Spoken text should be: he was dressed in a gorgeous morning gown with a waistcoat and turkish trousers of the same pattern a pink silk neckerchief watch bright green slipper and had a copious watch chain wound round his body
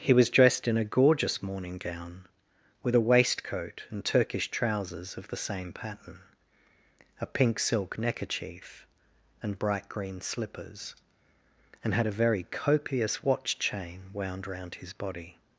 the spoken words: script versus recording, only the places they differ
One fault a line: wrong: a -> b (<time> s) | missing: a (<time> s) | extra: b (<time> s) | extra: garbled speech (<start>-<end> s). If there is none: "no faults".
wrong: watch -> and (9.4 s)
wrong: slipper -> slippers (10.2 s)
extra: very (12.2 s)